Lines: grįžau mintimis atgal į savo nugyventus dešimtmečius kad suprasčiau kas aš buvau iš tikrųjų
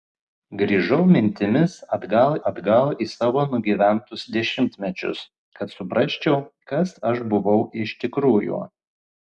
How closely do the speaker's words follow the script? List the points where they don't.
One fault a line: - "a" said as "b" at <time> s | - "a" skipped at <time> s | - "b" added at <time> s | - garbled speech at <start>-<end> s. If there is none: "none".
- "atgal" added at 2.5 s